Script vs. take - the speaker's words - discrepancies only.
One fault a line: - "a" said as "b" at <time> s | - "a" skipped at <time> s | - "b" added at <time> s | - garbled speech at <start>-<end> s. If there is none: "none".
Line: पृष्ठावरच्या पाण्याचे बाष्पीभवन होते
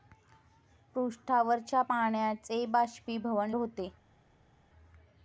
none